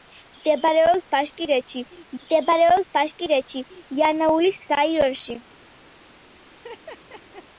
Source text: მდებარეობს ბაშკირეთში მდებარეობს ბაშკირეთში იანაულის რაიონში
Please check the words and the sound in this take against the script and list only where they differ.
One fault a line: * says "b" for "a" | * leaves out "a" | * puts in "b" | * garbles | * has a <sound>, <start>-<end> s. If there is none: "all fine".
* has a laugh, 6.5-7.4 s